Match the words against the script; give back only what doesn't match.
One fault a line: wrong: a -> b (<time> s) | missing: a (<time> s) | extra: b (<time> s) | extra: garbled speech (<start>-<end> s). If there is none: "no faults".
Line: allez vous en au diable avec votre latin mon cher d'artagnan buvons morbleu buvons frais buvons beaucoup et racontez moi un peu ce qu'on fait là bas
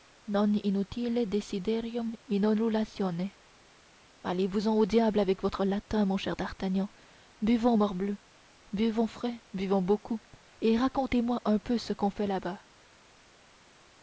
no faults